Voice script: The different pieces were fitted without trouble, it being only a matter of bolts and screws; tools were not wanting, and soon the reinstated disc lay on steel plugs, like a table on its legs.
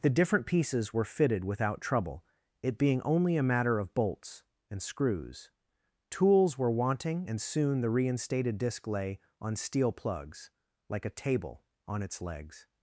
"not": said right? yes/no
no